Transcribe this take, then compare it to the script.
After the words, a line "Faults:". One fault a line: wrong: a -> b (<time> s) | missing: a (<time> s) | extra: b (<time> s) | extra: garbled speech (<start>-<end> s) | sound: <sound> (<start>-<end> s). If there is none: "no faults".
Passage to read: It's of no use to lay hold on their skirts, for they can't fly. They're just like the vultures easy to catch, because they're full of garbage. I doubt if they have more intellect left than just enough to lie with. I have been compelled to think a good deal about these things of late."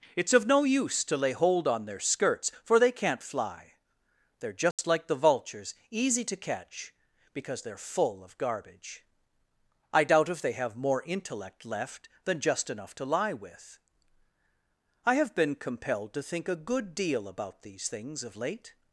It's of no use to lay hold on their skirts, for they can't fly. They're just like the vultures easy to catch, because they're full of garbage. I doubt if they have more intellect left than just enough to lie with. I have been compelled to think a good deal about these things of late."
Faults:
sound: dropout (4.7-4.8 s)